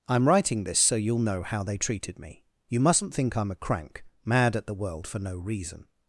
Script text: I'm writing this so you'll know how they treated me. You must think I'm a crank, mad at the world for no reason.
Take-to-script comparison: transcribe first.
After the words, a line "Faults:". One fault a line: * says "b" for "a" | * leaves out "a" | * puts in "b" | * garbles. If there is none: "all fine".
I'm writing this so you'll know how they treated me. You mustn't think I'm a crank, mad at the world for no reason.
Faults:
* says "mustn't" for "must"